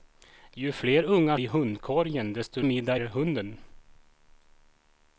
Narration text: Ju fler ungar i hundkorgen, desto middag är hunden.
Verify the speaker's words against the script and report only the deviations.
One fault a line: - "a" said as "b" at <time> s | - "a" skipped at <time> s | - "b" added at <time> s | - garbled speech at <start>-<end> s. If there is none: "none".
none